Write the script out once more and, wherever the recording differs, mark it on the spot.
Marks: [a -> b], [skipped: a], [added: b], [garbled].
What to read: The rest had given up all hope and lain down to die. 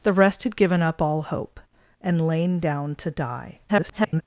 The rest had given up all hope and lain down to die. [garbled]